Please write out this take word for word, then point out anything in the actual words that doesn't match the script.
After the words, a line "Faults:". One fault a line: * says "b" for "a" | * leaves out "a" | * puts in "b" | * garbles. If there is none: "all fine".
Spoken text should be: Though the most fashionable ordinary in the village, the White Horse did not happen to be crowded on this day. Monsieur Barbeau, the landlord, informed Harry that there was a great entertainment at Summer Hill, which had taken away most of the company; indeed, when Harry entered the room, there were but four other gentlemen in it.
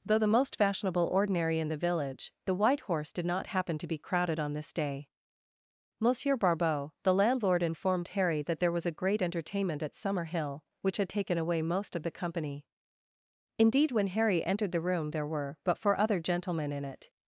Though the most fashionable ordinary in the village, the White Horse did not happen to be crowded on this day. Monsieur Barbeau, the landlord, informed Harry that there was a great entertainment at Summer Hill, which had taken away most of the company; indeed, when Harry entered the room, there were but four other gentlemen in it.
Faults:
all fine